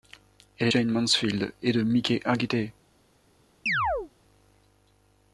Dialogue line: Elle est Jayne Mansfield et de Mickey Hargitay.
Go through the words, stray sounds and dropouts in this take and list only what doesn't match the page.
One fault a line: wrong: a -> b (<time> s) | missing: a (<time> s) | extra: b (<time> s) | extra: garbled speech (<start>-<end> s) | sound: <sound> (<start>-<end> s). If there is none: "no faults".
sound: chirp (3.7-4.1 s)